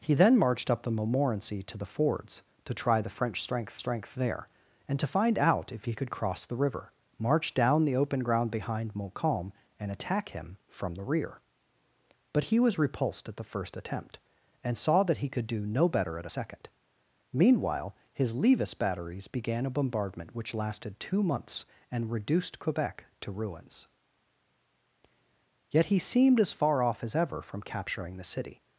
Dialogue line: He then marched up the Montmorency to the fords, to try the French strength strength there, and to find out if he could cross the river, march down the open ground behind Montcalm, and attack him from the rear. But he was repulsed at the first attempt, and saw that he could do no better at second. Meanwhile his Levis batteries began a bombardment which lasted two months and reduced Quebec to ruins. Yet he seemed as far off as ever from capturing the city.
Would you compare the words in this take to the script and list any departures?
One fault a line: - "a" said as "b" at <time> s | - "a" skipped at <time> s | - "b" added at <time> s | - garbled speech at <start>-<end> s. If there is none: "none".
none